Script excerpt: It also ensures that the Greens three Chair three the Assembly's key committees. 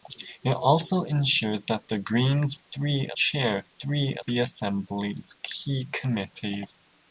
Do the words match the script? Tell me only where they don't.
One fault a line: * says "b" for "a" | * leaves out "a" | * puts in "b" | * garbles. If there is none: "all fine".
all fine